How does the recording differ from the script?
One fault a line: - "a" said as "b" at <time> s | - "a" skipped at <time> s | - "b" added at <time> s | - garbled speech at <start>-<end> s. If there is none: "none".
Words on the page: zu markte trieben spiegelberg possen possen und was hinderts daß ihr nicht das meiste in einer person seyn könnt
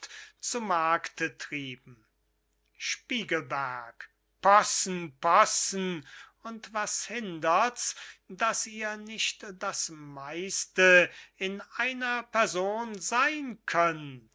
none